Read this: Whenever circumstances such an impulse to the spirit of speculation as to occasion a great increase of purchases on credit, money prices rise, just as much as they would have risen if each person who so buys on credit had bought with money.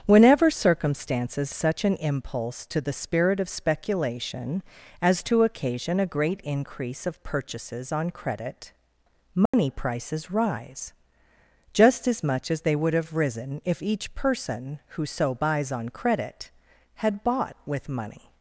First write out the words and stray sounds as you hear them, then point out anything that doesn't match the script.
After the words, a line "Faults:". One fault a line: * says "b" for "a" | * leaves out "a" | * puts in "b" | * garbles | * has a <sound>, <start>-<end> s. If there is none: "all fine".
Whenever circumstances such an impulse to the spirit of speculation as to occasion a great increase of purchases on credit, money prices rise, just as much as they would have risen if each person who so buys on credit had bought with money.
Faults:
* has a dropout, 9.5-9.5 s